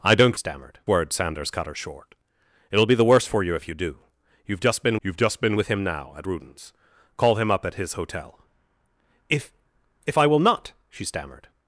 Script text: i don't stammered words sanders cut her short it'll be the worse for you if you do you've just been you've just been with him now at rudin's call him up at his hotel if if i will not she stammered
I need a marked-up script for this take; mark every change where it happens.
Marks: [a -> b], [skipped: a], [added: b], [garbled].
i don't stammered words sanders cut her short it'll be the worse for you if you do you've just been you've just been with him now at rudin's call him up at his hotel if if i will not she stammered